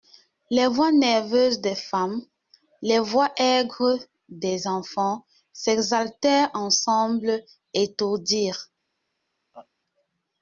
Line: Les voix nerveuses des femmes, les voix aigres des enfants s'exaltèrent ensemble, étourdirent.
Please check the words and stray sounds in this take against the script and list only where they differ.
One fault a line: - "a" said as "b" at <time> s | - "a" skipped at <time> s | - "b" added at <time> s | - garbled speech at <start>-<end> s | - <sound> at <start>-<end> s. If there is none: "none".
- laugh at 9.5-9.7 s